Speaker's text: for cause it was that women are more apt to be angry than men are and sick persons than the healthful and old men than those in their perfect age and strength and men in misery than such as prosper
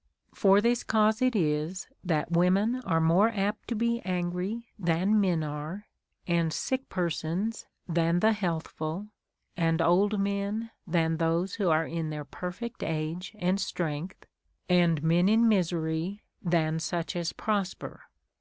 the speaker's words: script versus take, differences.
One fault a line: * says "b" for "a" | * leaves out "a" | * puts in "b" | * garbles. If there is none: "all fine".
* puts in "this"
* says "is" for "was"
* puts in "who are"